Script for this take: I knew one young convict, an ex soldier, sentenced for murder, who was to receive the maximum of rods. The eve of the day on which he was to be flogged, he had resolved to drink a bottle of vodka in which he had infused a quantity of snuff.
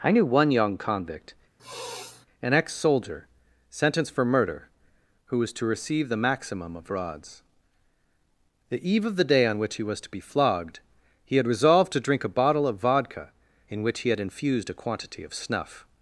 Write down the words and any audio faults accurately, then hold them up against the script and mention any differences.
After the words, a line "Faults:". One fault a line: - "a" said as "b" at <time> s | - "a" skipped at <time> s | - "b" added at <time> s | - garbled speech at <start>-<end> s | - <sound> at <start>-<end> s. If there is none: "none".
I knew one young convict, an ex soldier, sentenced for murder, who was to receive the maximum of rods. The eve of the day on which he was to be flogged, he had resolved to drink a bottle of vodka in which he had infused a quantity of snuff.
Faults:
- sniff at 1.6-2.3 s